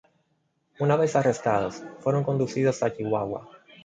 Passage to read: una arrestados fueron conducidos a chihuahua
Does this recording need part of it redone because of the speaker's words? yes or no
yes